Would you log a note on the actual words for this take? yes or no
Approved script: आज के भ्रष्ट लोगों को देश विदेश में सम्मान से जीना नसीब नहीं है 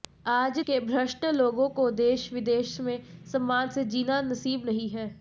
no